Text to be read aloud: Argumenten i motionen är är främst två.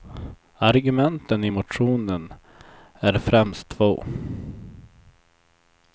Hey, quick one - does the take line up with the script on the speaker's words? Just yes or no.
no